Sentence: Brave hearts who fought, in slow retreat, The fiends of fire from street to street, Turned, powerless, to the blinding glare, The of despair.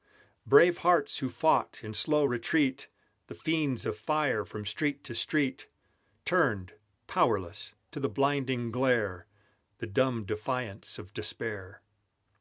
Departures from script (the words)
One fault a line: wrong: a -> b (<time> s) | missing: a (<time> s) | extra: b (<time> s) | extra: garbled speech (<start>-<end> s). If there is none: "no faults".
extra: dumb defiance (9.9 s)